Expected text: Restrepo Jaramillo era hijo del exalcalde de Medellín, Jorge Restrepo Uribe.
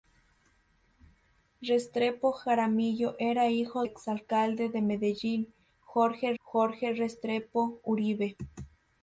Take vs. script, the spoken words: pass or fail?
fail